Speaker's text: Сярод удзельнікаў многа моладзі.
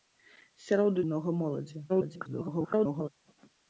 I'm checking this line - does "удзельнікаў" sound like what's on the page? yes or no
no